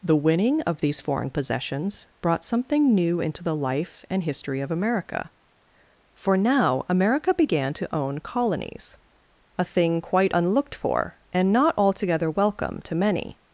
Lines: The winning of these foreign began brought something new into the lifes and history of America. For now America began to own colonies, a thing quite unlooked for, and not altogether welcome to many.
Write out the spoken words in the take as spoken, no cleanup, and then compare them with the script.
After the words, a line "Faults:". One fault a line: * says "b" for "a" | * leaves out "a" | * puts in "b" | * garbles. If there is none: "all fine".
The winning of these foreign possessions brought something new into the life and history of America. For now America began to own colonies, a thing quite unlooked for, and not altogether welcome to many.
Faults:
* says "possessions" for "began"
* says "life" for "lifes"